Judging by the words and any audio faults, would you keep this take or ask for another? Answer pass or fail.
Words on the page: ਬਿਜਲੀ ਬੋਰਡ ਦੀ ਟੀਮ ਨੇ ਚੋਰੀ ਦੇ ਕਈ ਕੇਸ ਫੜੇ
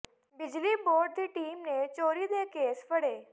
fail